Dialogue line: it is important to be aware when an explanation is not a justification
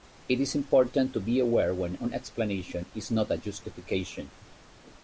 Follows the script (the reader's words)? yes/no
yes